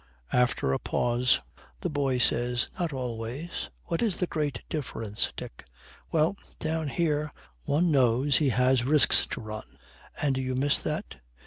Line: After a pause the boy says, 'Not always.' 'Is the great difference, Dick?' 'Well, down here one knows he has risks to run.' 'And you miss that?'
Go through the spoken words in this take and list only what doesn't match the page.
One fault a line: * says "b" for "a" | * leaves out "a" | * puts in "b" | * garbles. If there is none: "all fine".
* puts in "What"